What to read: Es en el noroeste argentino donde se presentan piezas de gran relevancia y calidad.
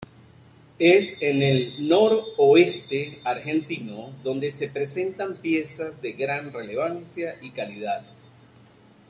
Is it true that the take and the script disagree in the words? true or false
false